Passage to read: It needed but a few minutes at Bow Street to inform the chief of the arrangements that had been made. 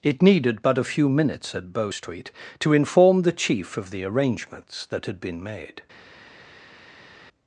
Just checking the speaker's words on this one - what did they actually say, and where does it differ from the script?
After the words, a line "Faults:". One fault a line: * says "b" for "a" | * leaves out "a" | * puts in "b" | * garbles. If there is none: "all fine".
It needed but a few minutes at Bow Street to inform the chief of the arrangements that had been made.
Faults:
all fine